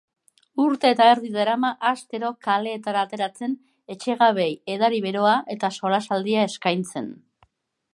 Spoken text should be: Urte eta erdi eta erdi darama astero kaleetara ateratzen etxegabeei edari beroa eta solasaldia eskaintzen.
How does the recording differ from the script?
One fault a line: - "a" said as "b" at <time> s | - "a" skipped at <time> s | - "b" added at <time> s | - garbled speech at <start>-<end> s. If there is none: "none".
- "eta erdi" skipped at 1.3 s